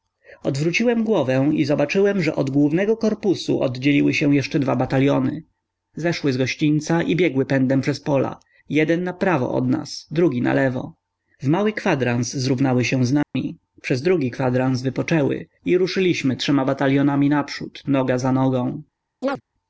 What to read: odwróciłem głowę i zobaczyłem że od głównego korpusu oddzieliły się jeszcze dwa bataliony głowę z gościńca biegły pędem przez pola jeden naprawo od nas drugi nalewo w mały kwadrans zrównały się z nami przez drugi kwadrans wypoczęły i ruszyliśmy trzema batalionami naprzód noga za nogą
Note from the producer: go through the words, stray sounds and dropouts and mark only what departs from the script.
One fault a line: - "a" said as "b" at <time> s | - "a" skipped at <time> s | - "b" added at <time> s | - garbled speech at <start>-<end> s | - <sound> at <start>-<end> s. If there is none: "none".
- "głowę" said as "zeszły" at 6.0 s
- "i" added at 7.0 s
- dropout at 13.2-13.3 s
- chirp at 19.2-19.4 s